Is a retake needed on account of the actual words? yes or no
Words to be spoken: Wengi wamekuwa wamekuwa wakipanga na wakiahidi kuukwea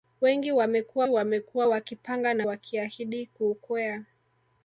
no